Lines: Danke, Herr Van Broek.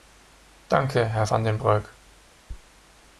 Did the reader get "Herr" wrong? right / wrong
right